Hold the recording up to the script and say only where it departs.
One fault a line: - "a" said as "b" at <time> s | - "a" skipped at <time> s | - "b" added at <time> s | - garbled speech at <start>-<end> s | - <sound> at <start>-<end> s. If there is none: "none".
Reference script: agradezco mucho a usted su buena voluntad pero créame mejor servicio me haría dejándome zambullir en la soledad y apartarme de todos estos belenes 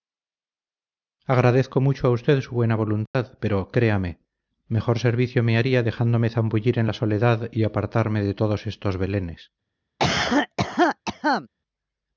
- dropout at 3.1-3.1 s
- cough at 10.0-11.5 s